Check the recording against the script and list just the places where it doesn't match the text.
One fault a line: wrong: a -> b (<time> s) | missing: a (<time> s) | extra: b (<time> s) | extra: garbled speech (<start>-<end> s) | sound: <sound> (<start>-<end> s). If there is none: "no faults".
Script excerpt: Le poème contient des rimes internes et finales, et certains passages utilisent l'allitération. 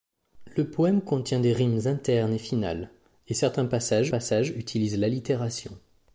extra: passages (4.1 s)